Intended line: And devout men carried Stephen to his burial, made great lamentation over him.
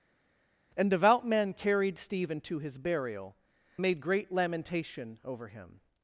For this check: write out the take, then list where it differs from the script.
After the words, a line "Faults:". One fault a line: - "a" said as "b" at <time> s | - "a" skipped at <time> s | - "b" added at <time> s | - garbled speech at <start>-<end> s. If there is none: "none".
And devout men carried Stephen to his burial, made great lamentation over him.
Faults:
none